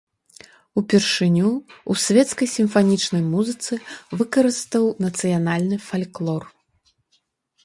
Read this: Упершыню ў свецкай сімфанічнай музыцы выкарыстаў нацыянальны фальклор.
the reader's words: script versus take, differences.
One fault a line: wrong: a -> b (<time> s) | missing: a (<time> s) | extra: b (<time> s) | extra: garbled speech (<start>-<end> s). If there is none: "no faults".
no faults